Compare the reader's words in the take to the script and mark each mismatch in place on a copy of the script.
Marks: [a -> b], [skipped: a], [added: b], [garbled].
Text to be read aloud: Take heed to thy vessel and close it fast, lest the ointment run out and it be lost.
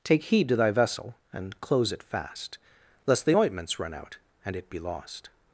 Take heed to thy vessel and close it fast, lest the [ointment -> ointments] run out and it be lost.